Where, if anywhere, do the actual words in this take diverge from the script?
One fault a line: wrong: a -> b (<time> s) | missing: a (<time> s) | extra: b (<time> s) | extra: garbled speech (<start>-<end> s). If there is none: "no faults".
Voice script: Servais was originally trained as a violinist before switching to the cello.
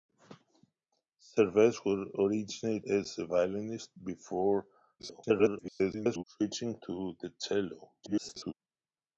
missing: trained (2.8 s)
extra: garbled speech (5.0-6.2 s)
extra: garbled speech (8.0-8.5 s)